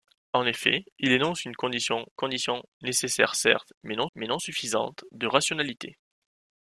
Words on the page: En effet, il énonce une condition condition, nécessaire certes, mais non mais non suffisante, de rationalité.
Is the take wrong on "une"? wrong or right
right